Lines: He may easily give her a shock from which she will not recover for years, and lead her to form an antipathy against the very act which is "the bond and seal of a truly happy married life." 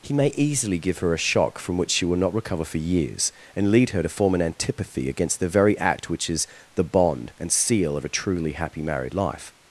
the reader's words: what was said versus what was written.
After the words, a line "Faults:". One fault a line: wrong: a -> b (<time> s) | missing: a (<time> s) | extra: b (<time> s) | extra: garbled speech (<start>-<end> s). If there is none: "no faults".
He may easily give her a shock from which she will not recover for years, and lead her to form an antipathy against the very act which is "the bond and seal of a truly happy married life."
Faults:
no faults